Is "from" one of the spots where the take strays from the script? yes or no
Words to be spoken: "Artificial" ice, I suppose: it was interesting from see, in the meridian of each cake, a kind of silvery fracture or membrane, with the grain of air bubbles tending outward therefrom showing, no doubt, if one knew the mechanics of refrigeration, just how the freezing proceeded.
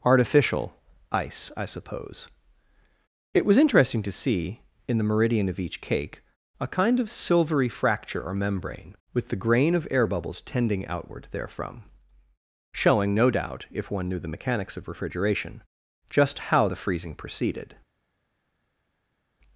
yes